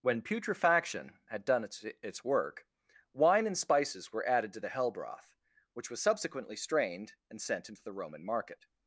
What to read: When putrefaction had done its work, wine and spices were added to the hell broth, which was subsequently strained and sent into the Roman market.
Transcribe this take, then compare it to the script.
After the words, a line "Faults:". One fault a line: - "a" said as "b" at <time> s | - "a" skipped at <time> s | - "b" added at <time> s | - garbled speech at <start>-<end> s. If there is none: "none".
When putrefaction had done its its work, wine and spices were added to the hell broth, which was subsequently strained and sent into the Roman market.
Faults:
- "its" added at 1.8 s